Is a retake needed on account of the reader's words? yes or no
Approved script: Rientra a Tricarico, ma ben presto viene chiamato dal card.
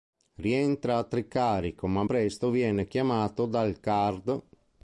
yes